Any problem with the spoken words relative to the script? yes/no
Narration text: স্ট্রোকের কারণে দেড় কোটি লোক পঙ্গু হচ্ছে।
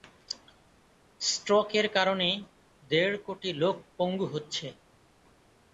no